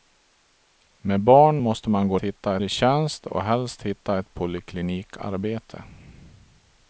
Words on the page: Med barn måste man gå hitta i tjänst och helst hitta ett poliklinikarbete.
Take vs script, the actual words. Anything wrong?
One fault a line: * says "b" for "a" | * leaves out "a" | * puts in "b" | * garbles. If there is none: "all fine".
all fine